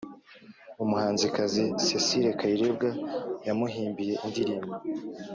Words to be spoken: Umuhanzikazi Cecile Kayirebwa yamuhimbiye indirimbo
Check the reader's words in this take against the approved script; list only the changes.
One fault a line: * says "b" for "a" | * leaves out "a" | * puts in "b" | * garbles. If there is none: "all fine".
all fine